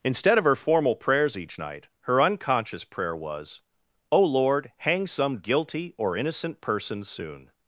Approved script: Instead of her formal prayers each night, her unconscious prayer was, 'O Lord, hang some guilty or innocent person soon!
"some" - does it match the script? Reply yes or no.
yes